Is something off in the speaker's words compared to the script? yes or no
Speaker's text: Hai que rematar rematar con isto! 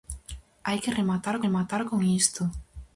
no